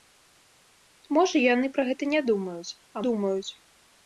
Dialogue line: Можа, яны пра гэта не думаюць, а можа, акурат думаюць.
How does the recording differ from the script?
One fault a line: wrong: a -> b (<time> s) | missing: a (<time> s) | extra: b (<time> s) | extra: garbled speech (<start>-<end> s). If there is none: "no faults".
missing: можа акурат (3.0 s)